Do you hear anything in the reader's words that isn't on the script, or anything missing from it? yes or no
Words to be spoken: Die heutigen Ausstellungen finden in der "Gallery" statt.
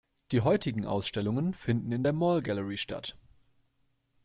yes